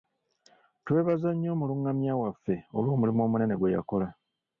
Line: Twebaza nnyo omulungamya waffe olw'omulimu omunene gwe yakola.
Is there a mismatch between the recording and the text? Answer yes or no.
no